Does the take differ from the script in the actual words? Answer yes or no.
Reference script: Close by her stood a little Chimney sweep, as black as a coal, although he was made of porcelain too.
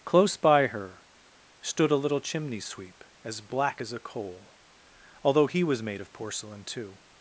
no